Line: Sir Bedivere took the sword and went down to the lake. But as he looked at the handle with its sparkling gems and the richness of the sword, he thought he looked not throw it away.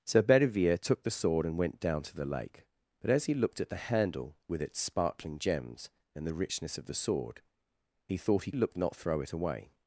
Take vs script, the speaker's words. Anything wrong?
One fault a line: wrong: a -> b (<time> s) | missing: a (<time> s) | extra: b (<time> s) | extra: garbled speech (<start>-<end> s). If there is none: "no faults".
no faults